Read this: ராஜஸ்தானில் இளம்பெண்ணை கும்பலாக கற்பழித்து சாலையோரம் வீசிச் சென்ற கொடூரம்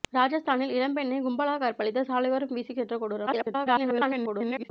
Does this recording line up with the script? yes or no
no